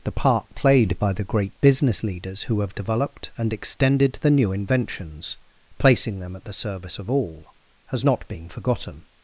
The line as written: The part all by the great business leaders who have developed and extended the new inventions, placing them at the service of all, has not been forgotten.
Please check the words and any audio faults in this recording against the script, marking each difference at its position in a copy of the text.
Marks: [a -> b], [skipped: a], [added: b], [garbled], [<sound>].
The part [all -> played] by the great business leaders who have developed and extended the new inventions, placing them at the service of all, has not been forgotten.